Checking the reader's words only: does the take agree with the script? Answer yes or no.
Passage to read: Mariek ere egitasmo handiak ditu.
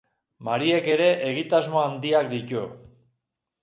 yes